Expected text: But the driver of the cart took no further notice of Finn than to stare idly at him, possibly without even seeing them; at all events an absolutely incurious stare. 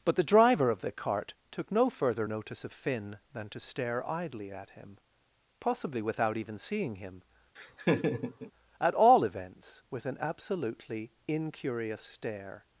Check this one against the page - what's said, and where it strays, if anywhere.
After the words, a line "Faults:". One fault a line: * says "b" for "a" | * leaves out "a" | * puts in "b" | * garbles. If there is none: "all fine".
But the driver of the cart took no further notice of Finn than to stare idly at him, possibly without even seeing him; at all events with an absolutely incurious stare.
Faults:
* says "him" for "them"
* puts in "with"